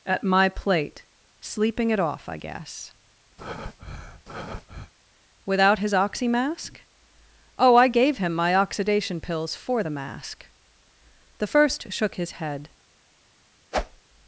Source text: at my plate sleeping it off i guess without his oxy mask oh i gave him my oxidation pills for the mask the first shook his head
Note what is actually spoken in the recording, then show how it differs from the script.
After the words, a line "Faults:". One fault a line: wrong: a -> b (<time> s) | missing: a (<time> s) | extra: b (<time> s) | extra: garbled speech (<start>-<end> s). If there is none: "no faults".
at my plate sleeping it off i guess without his oxy mask oh i gave him my oxidation pills for the mask the first shook his head
Faults:
no faults